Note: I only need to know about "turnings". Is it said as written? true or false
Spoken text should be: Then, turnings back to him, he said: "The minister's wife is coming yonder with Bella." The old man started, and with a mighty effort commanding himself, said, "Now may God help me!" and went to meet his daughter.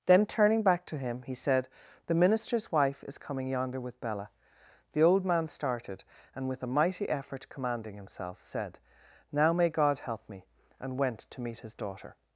false